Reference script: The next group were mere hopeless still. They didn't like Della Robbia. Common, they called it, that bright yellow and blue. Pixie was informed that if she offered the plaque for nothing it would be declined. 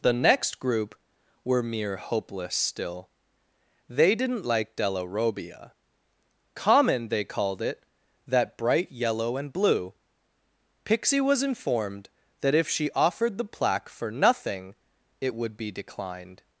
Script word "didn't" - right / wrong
right